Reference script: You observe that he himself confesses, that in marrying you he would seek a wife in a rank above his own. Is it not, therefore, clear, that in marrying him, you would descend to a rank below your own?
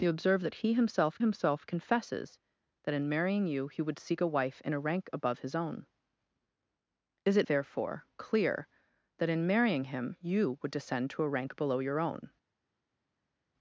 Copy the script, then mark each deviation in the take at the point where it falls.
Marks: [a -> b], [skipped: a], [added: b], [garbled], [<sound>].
You observe that he himself [added: himself] confesses, that in marrying you he would seek a wife in a rank above his own. Is it [skipped: not,] therefore, clear, that in marrying him, you would descend to a rank below your own?